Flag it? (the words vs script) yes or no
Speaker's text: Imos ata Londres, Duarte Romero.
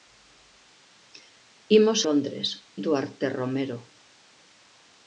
yes